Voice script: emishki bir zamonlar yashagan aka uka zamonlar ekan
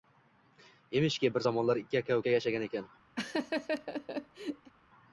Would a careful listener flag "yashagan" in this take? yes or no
yes